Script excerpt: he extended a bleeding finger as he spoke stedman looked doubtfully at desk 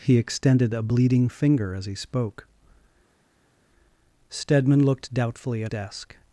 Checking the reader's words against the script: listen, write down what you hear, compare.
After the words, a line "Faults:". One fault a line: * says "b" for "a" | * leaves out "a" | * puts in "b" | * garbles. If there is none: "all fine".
he extended a bleeding finger as he spoke stedman looked doubtfully at desk
Faults:
all fine